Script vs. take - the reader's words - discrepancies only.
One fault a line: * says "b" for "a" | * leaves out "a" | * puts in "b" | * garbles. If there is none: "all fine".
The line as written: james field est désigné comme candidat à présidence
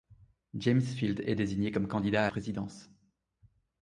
all fine